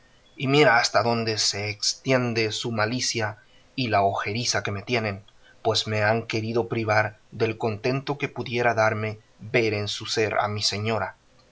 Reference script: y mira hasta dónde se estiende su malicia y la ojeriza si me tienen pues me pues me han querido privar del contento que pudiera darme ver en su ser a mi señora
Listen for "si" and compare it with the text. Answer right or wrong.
wrong